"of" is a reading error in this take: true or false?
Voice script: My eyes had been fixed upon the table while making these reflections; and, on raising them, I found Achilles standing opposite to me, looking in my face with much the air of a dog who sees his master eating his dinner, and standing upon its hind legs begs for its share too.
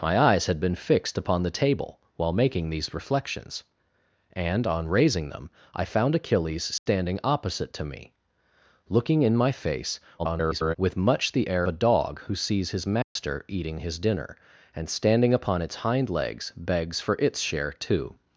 true